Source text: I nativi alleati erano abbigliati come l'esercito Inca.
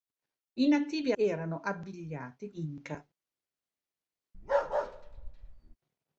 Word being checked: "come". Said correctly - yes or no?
no